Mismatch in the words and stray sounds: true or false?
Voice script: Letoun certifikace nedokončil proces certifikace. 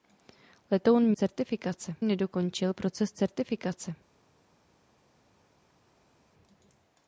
false